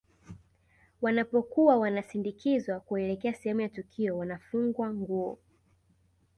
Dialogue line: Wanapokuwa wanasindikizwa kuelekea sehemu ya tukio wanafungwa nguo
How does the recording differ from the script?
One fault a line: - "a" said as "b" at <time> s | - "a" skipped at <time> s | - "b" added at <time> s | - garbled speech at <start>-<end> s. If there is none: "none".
none